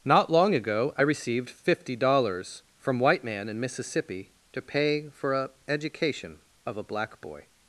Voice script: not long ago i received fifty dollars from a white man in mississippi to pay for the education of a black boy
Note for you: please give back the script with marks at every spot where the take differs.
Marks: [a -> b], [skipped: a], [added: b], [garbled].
not long ago i received fifty dollars from [skipped: a] white man in mississippi to pay for [the -> a] education of a black boy